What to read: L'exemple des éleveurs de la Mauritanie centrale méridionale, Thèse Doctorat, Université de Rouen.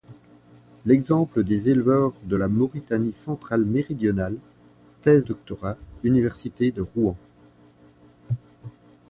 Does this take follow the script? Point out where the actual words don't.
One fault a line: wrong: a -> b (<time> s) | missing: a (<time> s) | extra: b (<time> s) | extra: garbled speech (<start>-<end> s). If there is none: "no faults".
no faults